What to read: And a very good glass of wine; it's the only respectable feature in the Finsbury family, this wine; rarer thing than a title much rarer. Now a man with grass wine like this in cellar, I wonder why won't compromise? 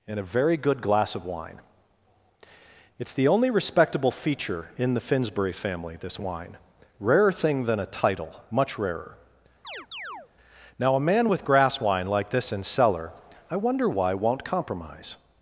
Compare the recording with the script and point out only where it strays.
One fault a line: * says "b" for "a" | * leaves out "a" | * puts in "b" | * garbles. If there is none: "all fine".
all fine